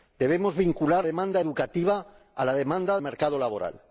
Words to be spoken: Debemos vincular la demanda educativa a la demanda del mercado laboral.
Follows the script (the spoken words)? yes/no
no